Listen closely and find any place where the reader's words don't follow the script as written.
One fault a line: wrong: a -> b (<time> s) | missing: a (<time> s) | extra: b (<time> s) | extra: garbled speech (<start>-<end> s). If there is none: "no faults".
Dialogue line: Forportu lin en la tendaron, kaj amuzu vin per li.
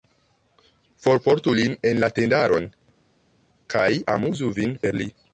no faults